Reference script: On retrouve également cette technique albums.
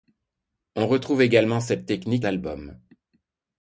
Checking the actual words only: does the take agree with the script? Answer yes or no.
yes